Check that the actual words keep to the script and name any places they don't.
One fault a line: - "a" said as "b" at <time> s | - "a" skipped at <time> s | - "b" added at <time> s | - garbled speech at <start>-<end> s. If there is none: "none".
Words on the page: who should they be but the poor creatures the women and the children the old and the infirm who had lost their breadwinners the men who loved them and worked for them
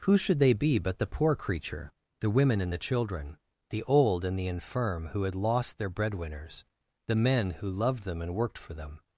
- "creatures" said as "creature" at 1.4 s